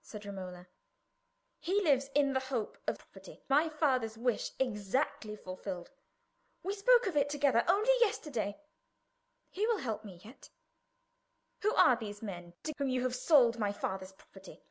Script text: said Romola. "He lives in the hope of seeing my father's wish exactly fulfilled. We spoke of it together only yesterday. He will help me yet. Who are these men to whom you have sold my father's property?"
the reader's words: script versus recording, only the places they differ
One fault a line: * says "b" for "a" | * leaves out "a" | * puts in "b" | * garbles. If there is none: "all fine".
* says "property" for "seeing"